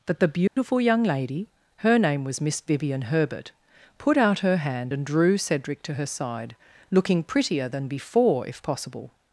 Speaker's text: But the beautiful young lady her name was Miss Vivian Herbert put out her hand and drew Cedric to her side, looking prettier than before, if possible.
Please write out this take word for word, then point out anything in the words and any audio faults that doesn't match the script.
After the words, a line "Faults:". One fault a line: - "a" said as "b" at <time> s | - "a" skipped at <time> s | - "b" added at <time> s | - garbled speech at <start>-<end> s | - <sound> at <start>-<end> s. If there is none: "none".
That the beautiful young lady her name was Miss Vivian Herbert put out her hand and drew Cedric to her side, looking prettier than before, if possible.
Faults:
- "But" said as "That" at 0.1 s
- dropout at 0.5-0.6 s